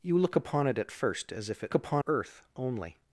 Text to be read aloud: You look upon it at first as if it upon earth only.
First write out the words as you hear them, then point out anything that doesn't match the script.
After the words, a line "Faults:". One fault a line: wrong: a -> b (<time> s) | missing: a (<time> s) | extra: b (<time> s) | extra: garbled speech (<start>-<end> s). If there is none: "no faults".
You look upon it at first as if it upon earth only.
Faults:
no faults